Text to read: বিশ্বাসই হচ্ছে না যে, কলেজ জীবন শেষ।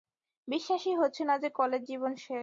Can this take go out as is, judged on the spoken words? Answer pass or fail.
pass